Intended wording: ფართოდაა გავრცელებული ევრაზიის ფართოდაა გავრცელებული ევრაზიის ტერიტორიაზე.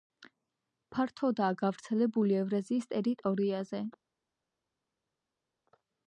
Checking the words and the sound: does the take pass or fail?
fail